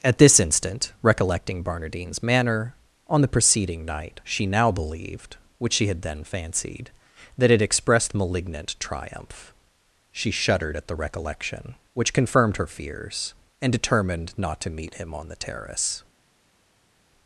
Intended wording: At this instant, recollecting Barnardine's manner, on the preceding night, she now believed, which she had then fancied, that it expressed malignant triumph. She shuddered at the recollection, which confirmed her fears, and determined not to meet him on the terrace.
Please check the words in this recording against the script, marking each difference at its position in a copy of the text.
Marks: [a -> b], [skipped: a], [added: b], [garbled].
At this instant, recollecting Barnardine's manner, on the preceding night, she now believed, which she had then fancied, that it expressed malignant triumph. She shuddered at the recollection, which confirmed her fears, and determined not to meet him on the terrace.